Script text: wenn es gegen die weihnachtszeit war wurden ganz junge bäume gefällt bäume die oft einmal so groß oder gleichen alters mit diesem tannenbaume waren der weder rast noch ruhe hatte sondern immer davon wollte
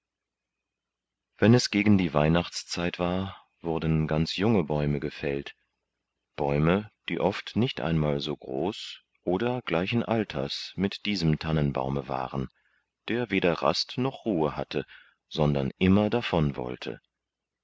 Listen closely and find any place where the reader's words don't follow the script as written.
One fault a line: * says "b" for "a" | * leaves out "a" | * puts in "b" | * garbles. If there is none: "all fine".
* puts in "nicht"